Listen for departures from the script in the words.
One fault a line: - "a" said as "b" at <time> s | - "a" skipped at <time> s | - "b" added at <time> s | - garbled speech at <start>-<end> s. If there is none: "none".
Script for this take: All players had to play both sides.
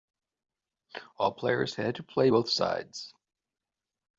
none